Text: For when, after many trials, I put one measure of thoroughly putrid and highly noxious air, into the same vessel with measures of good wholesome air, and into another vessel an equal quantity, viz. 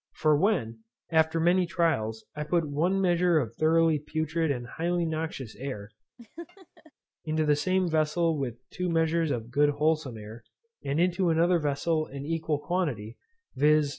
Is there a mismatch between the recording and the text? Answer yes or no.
yes